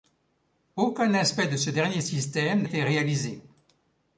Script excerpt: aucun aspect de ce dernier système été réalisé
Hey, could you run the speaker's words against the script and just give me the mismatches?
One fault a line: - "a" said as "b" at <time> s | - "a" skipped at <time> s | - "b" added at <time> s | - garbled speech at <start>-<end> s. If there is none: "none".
none